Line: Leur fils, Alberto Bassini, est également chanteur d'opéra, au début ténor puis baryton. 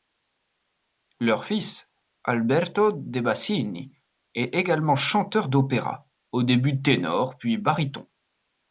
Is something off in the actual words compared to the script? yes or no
yes